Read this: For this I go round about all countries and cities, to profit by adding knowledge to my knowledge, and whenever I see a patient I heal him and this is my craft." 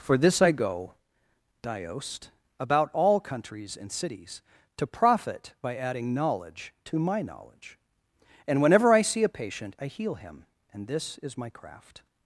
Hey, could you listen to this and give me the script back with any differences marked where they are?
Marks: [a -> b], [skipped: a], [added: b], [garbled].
For this I go [round -> diost] about all countries and cities, to profit by adding knowledge to my knowledge, and whenever I see a patient I heal him and this is my craft."